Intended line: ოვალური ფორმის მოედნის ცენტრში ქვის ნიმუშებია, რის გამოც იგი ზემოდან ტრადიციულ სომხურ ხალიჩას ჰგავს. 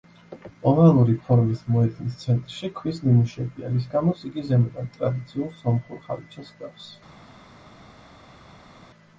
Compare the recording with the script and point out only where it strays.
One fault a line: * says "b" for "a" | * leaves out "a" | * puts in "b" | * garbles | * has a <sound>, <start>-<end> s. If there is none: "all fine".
all fine